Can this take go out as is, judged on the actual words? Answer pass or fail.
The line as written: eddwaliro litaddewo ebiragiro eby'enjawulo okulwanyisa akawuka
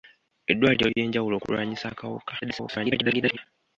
fail